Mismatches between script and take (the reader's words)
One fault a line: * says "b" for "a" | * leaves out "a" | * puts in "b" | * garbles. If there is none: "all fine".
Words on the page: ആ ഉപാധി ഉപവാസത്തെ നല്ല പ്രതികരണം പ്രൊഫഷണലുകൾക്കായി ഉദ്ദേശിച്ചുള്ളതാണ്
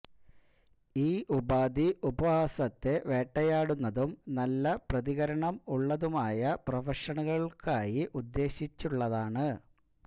* says "ഈ" for "ആ"
* puts in "വേട്ടയാടുന്നതും"
* puts in "ഉള്ളതുമായ"